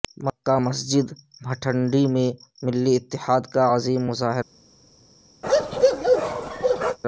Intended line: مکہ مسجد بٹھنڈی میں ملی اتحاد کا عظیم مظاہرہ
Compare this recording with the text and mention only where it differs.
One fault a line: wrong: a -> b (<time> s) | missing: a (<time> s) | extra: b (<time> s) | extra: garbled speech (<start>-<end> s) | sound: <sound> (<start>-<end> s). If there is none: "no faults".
sound: bark (5.4-7.0 s)